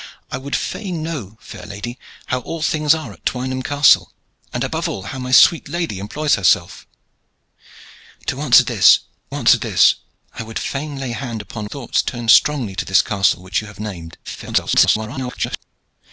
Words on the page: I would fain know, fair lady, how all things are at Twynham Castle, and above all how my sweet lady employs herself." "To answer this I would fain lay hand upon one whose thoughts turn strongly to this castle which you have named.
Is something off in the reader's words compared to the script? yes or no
yes